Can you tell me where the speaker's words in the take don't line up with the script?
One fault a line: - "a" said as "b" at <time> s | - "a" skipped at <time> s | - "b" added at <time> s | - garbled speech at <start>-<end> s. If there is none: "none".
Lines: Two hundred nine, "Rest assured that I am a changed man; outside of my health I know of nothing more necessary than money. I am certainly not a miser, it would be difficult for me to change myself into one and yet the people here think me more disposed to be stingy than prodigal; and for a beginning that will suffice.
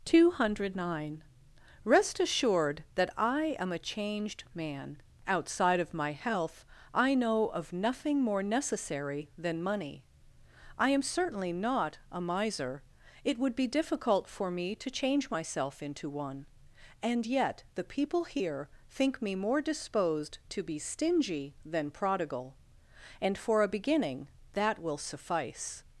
none